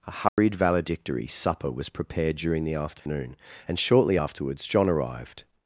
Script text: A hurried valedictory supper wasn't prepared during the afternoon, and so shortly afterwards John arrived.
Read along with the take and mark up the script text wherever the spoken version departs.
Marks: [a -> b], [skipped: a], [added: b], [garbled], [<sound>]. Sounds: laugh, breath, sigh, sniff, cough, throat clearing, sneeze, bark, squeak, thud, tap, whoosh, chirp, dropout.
A hurried [dropout] valedictory supper [wasn't -> was] prepared during the afternoon, [dropout] and [skipped: so] shortly afterwards John arrived.